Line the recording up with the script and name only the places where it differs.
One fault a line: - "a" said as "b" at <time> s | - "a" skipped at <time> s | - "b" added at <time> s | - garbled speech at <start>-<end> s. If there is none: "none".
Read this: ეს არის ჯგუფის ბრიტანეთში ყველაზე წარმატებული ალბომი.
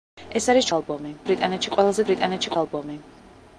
- "ჯგუფის" said as "ალბომი" at 0.8 s
- "წარმატებული" said as "ბრიტანეთში" at 2.1 s